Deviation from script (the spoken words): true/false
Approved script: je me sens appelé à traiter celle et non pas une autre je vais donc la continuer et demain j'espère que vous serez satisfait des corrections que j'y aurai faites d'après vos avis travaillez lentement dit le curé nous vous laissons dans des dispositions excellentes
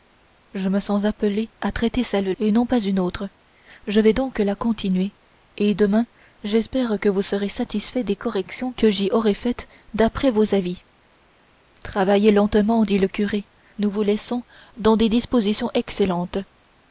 false